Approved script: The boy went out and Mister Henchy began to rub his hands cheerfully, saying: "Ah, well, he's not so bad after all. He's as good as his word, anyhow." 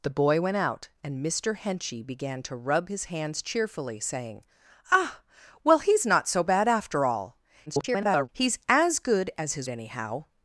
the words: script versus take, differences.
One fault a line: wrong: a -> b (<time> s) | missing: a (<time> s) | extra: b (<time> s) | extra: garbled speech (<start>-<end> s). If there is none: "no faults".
extra: garbled speech (7.7-8.3 s)
missing: word (9.7 s)